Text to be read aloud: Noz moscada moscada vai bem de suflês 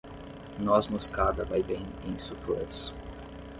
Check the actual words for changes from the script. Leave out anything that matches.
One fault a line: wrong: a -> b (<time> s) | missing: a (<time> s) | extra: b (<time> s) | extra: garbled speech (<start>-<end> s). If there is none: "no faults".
missing: moscada (1.4 s)
wrong: de -> em (2.0 s)